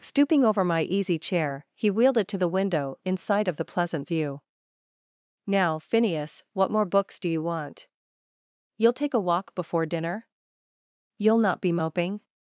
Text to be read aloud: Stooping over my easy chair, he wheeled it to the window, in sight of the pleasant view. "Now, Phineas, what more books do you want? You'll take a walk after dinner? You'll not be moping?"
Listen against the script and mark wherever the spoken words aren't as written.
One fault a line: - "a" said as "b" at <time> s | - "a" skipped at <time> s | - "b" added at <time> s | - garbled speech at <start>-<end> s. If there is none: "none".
- "after" said as "before" at 9.5 s